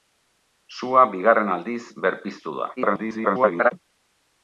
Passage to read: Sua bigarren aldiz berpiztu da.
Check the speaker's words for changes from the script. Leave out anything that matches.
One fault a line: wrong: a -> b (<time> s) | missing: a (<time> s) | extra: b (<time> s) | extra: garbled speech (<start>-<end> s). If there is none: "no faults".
extra: garbled speech (2.8-3.7 s)